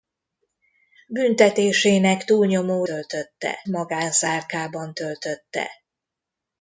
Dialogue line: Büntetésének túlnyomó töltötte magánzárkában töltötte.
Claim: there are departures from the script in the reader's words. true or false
false